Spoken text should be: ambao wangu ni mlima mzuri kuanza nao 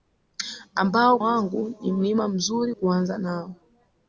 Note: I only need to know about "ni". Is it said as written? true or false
true